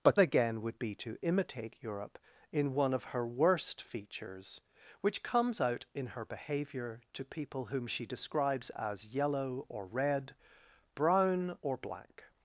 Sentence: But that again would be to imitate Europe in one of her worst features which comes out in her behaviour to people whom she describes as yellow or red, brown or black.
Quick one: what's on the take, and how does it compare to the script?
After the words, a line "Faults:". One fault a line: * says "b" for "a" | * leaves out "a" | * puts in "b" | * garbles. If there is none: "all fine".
But again would be to imitate Europe in one of her worst features which comes out in her behaviour to people whom she describes as yellow or red, brown or black.
Faults:
* leaves out "that"